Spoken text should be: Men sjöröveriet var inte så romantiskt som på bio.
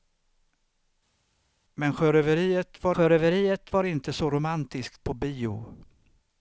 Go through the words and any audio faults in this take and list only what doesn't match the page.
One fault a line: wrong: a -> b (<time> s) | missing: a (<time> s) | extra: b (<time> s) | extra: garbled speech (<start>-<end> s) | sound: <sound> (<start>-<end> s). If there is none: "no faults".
extra: sjöröveriet var (2.9 s)
missing: som (5.1 s)